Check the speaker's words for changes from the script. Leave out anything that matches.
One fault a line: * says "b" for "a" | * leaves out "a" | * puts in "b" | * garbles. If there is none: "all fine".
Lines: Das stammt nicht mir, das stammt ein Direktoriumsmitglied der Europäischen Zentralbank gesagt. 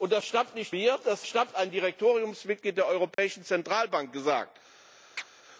all fine